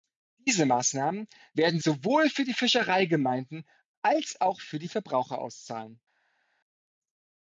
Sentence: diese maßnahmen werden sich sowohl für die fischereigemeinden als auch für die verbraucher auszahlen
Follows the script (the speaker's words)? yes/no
no